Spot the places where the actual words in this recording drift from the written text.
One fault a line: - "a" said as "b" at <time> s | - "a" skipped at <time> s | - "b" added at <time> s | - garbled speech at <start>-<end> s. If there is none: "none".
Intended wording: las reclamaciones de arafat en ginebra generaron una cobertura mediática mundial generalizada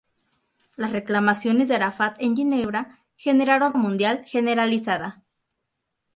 - "una cobertura mediática" skipped at 3.8 s